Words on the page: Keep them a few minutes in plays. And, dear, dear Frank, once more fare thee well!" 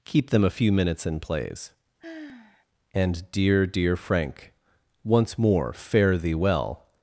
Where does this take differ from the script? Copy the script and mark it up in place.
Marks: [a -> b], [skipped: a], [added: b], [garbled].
Keep them a few minutes in plays. And, dear, dear Frank, once more fare thee well!"